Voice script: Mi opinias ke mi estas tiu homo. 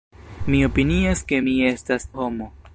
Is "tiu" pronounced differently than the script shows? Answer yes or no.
yes